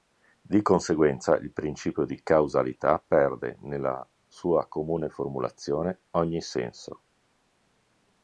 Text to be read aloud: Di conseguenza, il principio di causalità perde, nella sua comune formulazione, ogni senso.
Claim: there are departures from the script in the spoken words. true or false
false